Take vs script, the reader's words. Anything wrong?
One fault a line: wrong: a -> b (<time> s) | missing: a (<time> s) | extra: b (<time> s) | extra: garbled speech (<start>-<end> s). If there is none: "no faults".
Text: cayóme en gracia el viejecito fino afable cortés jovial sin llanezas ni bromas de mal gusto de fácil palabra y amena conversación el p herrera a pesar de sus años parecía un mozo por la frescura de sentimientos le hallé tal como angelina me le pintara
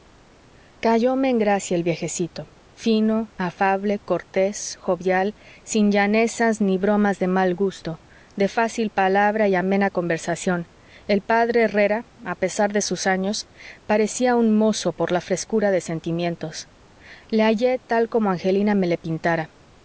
no faults